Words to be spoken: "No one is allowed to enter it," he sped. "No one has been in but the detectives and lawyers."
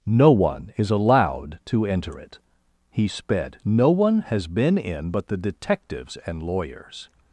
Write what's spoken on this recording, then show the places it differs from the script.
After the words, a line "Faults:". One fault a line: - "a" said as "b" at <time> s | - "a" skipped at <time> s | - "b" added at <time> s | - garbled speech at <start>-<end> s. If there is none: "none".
"No one is allowed to enter it," he sped. "No one has been in but the detectives and lawyers."
Faults:
none